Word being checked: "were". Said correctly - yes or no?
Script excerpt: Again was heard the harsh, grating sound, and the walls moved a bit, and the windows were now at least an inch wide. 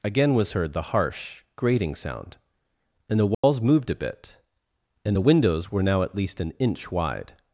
yes